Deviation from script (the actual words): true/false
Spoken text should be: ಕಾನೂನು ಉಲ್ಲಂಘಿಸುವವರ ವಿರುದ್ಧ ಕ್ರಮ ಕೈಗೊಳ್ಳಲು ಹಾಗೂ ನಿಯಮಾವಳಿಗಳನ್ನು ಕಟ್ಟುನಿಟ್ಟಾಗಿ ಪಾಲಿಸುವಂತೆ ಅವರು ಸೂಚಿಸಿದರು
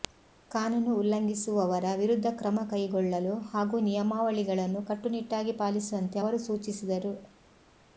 false